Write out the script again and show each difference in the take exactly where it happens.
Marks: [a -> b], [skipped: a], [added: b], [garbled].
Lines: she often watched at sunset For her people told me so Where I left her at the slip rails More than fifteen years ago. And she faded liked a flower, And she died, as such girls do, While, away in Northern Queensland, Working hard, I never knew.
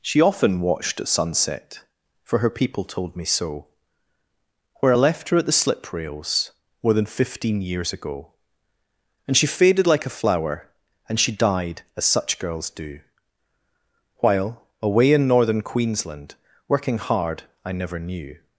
she often watched at sunset For her people told me so Where I left her at the slip rails More than fifteen years ago. And she faded [liked -> like] a flower, And she died, as such girls do, While, away in Northern Queensland, Working hard, I never knew.